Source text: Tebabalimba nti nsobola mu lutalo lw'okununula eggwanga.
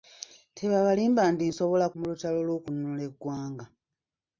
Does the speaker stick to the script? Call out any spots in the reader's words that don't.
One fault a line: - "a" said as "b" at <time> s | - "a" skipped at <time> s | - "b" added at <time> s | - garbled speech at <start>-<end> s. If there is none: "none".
none